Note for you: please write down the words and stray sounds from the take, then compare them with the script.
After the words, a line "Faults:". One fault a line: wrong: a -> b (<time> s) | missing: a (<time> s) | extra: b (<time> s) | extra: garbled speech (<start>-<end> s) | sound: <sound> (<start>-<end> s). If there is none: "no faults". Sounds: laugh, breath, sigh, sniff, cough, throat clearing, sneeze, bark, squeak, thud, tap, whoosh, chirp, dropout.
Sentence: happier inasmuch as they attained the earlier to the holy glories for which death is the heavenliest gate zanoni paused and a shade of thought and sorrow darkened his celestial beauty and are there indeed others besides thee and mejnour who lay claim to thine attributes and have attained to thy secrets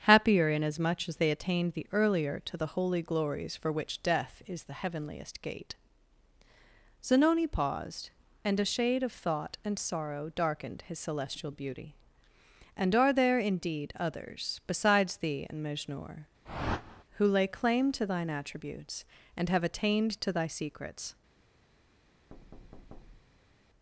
happier inasmuch as they attained the earlier to the holy glories for which death is the heavenliest gate zanoni paused and a shade of thought and sorrow darkened his celestial beauty and are there indeed others besides thee and mejnour who lay claim to thine attributes and have attained to thy secrets
Faults:
sound: whoosh (16.4-17.0 s)
sound: thud (22.3-23.6 s)